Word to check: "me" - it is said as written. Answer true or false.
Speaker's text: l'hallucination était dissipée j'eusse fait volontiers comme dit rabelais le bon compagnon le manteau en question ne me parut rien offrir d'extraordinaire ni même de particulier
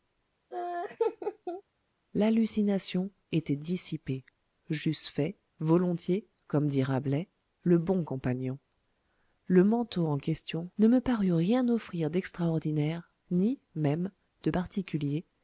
true